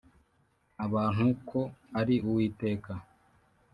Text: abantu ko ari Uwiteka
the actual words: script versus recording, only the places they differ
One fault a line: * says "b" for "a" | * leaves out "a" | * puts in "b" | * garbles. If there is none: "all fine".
all fine